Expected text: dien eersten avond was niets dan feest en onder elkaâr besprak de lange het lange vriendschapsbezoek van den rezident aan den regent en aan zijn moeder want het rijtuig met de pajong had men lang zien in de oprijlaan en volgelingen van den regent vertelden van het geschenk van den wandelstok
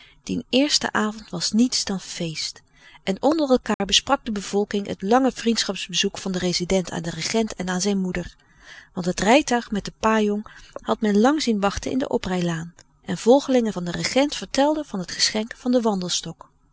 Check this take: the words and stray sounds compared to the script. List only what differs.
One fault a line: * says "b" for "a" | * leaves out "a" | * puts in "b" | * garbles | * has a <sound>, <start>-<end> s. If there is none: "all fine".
* has a dropout, 3.7-3.8 s
* says "bevolking" for "lange"
* puts in "wachten"